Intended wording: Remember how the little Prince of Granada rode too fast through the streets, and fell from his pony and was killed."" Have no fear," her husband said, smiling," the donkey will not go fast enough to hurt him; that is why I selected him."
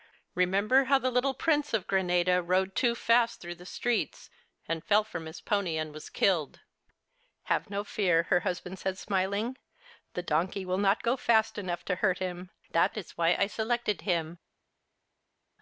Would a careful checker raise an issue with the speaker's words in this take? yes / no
no